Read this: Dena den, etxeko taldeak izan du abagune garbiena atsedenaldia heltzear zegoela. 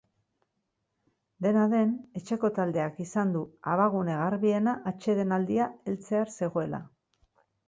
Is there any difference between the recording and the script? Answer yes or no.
no